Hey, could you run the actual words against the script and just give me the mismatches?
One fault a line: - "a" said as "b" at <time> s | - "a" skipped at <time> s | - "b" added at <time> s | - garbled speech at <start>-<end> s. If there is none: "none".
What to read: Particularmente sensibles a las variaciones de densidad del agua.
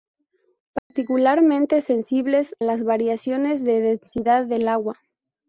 - "a" skipped at 2.5 s